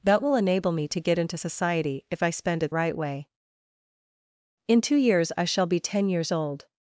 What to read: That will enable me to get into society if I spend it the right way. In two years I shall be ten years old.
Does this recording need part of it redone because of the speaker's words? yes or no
yes